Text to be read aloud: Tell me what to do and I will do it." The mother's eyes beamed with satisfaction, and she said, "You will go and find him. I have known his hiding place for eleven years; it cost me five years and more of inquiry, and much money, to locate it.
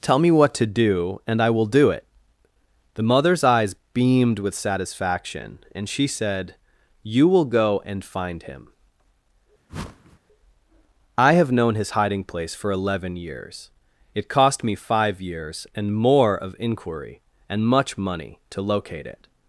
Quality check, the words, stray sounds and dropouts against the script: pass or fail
fail